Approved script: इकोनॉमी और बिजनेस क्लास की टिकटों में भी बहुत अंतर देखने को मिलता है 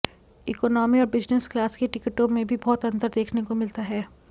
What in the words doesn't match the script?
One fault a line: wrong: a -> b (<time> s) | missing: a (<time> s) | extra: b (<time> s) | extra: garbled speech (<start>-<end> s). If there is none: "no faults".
no faults